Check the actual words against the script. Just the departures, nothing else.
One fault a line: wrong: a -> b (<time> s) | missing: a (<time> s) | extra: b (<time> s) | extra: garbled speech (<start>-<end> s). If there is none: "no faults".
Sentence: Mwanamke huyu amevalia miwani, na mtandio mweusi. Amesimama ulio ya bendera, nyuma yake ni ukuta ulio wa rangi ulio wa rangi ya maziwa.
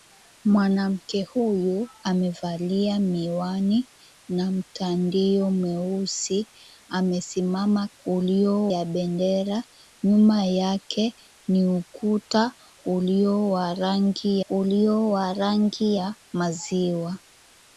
no faults